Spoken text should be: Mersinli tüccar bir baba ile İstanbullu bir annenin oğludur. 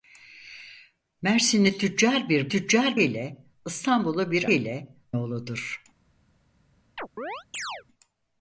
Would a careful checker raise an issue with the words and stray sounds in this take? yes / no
yes